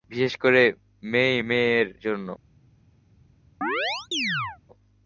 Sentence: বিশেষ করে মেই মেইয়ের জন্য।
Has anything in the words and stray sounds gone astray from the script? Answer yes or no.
yes